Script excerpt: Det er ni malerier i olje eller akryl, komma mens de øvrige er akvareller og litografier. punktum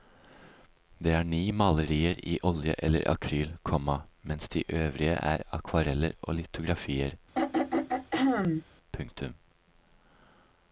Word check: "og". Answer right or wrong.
right